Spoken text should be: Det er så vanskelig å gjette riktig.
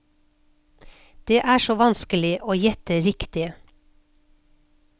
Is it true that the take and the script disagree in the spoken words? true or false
false